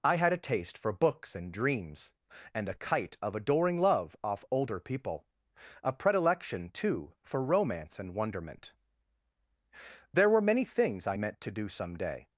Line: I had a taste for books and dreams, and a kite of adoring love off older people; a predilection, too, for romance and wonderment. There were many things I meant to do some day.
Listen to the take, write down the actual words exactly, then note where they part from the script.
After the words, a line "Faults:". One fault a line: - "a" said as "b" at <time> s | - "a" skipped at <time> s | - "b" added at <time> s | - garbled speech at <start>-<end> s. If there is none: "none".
I had a taste for books and dreams, and a kite of adoring love off older people; a predilection, too, for romance and wonderment. There were many things I meant to do some day.
Faults:
none